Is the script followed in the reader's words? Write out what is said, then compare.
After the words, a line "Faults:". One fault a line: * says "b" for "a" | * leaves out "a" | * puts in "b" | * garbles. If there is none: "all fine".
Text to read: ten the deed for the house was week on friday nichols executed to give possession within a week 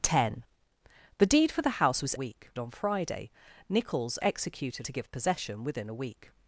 ten the deed for the house was week on friday nichols executed to give possession within a week
Faults:
all fine